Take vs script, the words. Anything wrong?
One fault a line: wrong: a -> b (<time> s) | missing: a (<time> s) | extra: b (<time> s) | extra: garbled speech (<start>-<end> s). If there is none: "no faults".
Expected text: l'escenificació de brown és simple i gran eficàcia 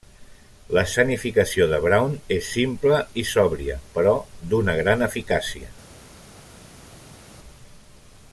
extra: sòbria però d'una (3.3 s)